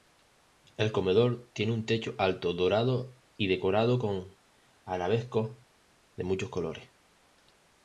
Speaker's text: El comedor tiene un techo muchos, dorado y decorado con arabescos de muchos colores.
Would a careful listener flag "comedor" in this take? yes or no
no